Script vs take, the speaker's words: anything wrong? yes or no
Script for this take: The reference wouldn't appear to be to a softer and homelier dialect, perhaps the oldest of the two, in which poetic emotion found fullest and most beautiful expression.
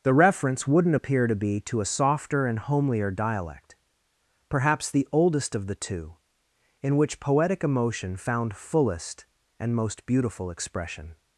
no